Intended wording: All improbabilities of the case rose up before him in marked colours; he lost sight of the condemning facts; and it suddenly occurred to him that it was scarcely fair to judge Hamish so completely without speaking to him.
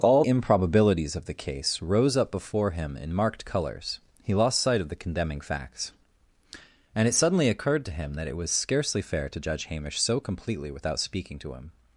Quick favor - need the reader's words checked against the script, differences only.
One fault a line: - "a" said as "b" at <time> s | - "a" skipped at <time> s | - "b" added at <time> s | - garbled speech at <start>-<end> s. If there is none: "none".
none